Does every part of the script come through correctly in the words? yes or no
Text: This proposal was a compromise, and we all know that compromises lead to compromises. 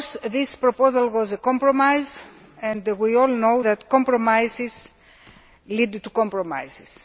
yes